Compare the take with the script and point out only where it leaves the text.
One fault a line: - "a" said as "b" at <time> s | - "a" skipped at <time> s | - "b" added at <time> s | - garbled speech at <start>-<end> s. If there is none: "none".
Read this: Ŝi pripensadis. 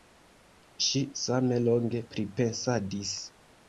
- "same longe" added at 1.2 s